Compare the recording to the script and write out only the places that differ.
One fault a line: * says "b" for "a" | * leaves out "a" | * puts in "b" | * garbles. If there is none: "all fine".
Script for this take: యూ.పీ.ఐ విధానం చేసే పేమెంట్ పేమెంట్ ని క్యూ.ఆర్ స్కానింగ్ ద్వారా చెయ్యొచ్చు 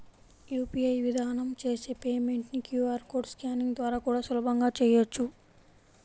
* leaves out "పేమెంట్"
* puts in "కోడ్"
* puts in "కూడా సులభంగా"